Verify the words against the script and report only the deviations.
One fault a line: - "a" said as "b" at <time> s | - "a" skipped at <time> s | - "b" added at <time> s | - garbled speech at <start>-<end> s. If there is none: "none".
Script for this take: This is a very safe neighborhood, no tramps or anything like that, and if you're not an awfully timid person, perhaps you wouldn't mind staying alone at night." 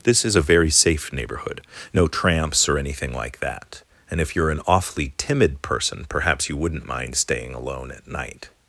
- "not" skipped at 4.5 s